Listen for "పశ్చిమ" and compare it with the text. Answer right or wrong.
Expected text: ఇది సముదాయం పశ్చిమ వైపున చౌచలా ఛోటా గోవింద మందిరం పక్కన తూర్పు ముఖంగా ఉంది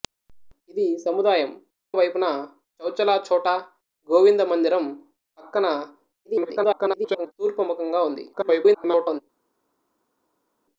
wrong